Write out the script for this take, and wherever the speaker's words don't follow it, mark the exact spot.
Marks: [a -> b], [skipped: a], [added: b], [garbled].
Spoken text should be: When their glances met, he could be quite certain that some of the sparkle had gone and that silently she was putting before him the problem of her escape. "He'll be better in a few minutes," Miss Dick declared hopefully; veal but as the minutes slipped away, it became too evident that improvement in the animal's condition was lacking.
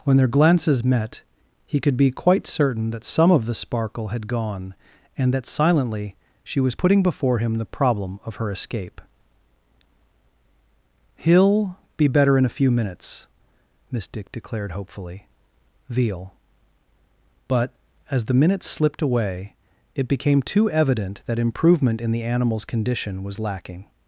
When their glances met, he could be quite certain that some of the sparkle had gone and that silently she was putting before him the problem of her escape. "He'll be better in a few minutes," Miss Dick declared hopefully; veal but as the minutes slipped away, it became too evident that improvement in the animal's condition was lacking.